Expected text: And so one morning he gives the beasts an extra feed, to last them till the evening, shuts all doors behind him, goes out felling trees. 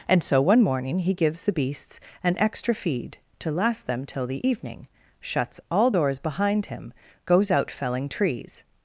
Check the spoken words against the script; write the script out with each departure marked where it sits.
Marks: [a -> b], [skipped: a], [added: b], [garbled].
And so one morning he gives the beasts an extra feed, to last them till the evening, shuts all doors behind him, goes out felling trees.